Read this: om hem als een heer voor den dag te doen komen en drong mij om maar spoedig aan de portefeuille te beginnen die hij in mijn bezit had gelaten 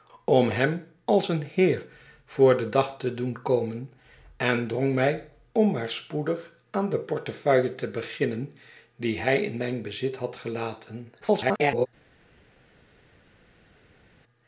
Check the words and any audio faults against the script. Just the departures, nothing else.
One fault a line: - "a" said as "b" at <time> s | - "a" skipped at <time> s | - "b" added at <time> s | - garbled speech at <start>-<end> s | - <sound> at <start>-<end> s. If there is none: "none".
- garbled speech at 11.2-11.9 s